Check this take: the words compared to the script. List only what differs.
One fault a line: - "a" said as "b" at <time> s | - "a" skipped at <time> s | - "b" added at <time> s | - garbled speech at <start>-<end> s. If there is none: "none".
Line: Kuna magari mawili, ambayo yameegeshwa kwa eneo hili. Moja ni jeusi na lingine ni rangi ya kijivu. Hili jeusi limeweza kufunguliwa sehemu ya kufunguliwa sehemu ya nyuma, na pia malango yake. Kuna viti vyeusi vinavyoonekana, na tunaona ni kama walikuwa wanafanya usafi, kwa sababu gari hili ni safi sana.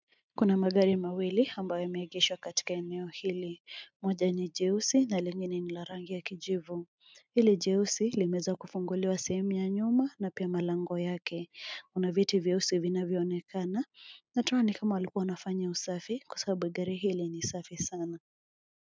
- "kwa" said as "katika" at 2.4 s
- "la" added at 5.7 s
- "kufunguliwa sehemu ya" skipped at 9.7 s